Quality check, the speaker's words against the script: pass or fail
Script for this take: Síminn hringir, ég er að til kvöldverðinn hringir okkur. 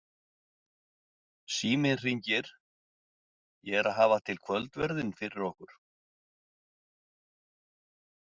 fail